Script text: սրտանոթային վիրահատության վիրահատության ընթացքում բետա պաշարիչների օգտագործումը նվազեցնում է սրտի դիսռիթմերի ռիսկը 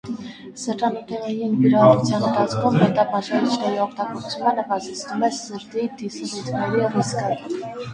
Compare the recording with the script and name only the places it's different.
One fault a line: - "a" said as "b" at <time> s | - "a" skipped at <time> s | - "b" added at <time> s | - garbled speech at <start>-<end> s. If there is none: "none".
- "վիրահատության" skipped at 2.2 s